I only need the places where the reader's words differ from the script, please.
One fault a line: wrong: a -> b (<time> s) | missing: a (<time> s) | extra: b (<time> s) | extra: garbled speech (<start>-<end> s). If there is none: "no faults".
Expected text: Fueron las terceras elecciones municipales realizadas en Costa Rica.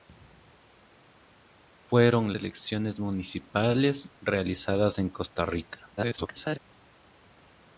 missing: las terceras (2.3 s)
extra: garbled speech (6.0-6.6 s)